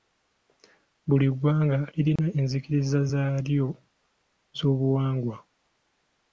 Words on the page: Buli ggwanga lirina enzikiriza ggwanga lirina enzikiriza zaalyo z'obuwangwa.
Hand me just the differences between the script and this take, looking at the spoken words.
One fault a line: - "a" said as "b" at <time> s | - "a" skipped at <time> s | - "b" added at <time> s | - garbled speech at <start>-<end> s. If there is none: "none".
- "ggwanga lirina enzikiriza" skipped at 3.0 s